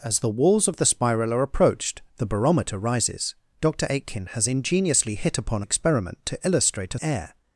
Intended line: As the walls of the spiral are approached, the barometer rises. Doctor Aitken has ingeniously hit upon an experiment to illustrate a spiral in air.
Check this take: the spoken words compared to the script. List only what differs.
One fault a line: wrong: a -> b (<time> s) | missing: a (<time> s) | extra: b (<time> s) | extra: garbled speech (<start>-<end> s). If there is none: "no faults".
missing: an (5.6 s)
missing: spiral in (7.0 s)